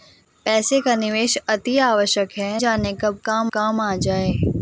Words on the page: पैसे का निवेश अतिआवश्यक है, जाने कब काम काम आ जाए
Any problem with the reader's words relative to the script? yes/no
no